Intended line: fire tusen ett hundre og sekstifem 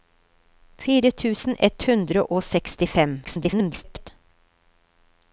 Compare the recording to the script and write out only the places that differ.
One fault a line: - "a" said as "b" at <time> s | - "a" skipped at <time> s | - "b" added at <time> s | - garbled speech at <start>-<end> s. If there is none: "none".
- garbled speech at 3.2-4.1 s